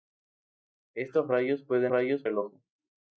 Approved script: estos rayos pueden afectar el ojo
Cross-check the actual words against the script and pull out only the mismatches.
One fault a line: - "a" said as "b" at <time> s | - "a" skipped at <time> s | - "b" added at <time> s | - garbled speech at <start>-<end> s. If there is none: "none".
- "afectar" said as "rayos" at 1.9 s